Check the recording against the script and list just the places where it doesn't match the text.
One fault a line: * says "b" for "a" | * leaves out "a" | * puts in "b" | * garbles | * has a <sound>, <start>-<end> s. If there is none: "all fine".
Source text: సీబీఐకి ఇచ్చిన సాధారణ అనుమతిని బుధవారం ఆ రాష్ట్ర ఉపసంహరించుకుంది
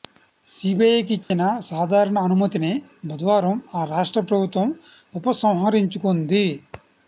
* has a dropout, 1.2-1.3 s
* puts in "ప్రభుత్వం"